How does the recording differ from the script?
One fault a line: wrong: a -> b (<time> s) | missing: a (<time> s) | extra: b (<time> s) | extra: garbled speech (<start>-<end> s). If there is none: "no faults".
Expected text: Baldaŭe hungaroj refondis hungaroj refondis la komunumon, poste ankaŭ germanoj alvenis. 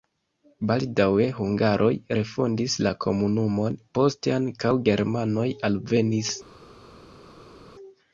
missing: hungaroj refondis (2.8 s)